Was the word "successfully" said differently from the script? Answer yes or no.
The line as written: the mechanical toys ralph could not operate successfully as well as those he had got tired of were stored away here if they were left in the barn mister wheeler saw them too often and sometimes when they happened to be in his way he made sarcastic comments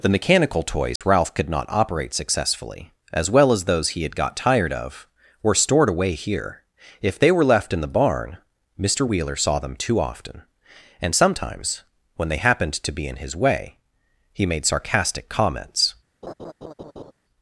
no